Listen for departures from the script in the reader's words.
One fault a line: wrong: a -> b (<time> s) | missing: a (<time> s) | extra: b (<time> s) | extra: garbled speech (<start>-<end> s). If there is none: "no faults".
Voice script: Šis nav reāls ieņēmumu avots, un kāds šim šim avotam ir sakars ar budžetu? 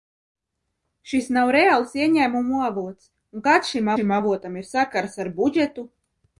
no faults